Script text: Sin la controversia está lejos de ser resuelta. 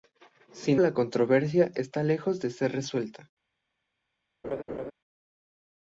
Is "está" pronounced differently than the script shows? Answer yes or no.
no